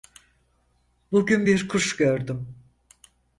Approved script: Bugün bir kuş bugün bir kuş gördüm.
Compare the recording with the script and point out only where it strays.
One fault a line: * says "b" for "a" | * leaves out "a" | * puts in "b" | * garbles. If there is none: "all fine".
* leaves out "bugün bir kuş"